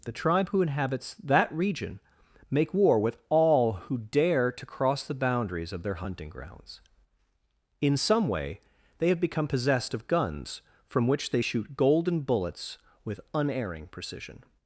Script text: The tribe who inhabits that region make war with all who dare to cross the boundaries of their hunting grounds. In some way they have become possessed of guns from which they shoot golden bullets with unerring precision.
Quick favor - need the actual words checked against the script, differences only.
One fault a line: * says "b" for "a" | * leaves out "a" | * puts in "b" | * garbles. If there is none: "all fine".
all fine